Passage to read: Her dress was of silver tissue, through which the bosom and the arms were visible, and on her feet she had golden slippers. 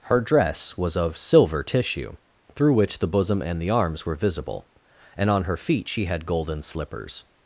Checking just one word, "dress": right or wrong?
right